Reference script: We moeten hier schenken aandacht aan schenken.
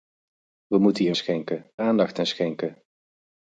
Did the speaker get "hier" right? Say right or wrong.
right